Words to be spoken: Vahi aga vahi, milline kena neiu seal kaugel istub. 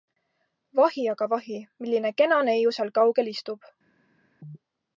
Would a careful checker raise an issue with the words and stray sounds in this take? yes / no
no